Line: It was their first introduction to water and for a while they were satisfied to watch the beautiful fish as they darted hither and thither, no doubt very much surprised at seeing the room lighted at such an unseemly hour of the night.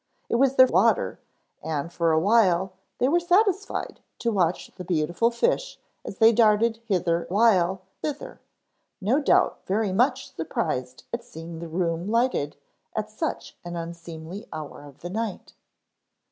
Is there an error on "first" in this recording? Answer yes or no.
yes